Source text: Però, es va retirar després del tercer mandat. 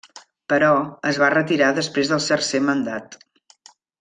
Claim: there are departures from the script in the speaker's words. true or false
false